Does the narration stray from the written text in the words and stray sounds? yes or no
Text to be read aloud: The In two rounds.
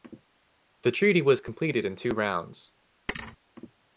yes